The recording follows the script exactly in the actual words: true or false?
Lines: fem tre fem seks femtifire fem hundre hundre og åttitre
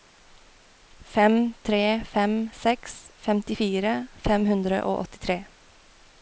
false